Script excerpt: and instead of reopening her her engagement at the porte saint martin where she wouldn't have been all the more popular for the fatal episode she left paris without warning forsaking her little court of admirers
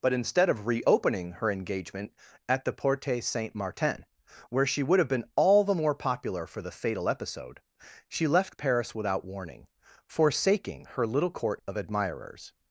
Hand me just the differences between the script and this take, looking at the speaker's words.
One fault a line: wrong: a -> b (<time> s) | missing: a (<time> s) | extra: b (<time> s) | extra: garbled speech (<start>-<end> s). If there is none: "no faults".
wrong: and -> but (0.0 s)
missing: her (1.5 s)
wrong: wouldn't -> would (4.8 s)